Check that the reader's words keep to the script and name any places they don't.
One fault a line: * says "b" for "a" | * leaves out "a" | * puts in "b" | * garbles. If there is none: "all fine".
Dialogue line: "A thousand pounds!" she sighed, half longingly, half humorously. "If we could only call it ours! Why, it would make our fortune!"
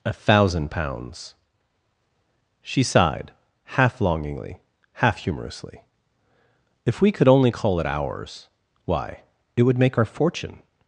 all fine